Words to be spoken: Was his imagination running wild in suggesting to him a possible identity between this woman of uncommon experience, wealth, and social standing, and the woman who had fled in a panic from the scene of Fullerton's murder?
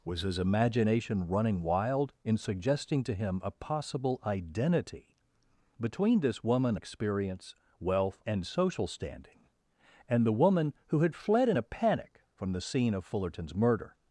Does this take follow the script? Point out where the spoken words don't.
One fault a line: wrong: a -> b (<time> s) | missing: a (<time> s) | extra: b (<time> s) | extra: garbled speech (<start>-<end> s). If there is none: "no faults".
missing: of uncommon (6.8 s)